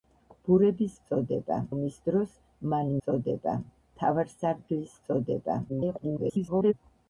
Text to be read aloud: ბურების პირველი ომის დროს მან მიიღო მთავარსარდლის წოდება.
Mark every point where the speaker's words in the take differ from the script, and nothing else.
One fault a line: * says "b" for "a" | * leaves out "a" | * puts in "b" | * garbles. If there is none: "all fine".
* says "წოდება" for "პირველი"
* says "წოდება" for "მიიღო"
* garbles